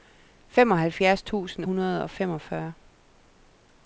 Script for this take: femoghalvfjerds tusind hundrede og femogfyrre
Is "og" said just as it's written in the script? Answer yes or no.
yes